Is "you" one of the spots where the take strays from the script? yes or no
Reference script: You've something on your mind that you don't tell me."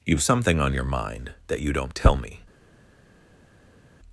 no